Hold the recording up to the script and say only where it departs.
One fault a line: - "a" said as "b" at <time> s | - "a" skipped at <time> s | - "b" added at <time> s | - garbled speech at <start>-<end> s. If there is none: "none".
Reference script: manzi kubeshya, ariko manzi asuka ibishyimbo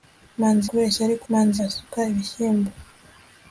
none